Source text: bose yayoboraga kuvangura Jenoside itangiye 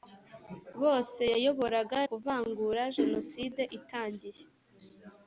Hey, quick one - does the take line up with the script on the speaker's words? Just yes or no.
yes